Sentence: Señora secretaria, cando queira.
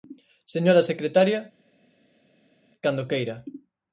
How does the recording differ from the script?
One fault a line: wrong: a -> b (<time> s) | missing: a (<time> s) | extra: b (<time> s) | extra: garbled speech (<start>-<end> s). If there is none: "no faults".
no faults